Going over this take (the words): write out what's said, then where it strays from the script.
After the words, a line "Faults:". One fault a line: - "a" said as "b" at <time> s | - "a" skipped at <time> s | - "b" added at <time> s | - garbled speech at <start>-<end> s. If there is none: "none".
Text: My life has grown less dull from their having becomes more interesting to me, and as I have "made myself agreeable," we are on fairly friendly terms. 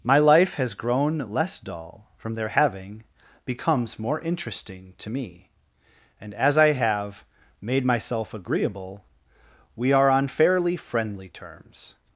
My life has grown less dull from their having becomes more interesting to me, and as I have "made myself agreeable," we are on fairly friendly terms.
Faults:
none